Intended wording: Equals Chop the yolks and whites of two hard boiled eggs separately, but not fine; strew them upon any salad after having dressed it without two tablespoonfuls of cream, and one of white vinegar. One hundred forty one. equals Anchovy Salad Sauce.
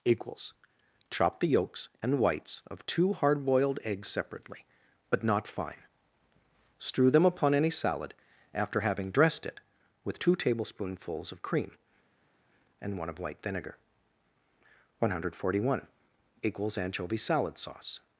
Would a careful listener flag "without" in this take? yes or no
yes